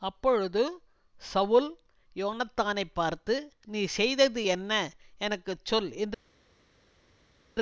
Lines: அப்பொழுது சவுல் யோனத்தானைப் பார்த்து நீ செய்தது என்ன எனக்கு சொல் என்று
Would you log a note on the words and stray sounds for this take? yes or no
no